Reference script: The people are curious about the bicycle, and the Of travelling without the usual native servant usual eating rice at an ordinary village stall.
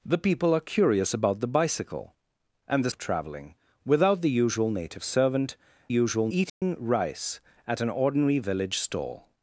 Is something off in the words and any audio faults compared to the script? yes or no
yes